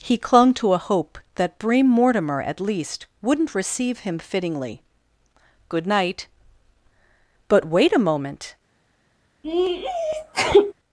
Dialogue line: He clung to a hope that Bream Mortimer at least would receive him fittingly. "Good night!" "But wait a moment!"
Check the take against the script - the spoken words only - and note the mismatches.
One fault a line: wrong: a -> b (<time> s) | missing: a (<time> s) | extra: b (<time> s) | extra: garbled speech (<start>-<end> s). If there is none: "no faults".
wrong: would -> wouldn't (3.2 s)